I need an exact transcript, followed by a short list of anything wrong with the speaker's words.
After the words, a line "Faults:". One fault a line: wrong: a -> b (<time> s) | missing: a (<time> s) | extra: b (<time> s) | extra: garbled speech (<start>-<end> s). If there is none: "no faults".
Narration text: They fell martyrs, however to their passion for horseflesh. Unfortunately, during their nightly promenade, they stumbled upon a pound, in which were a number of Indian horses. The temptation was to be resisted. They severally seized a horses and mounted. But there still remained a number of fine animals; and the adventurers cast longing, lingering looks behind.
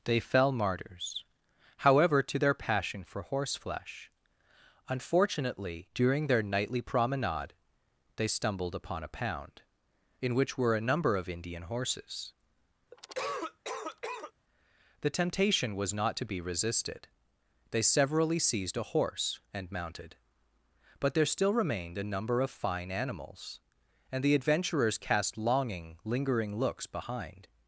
They fell martyrs, however to their passion for horseflesh. Unfortunately, during their nightly promenade, they stumbled upon a pound, in which were a number of Indian horses. The temptation was not to be resisted. They severally seized a horse and mounted. But there still remained a number of fine animals; and the adventurers cast longing, lingering looks behind.
Faults:
extra: not (15.9 s)
wrong: horses -> horse (18.8 s)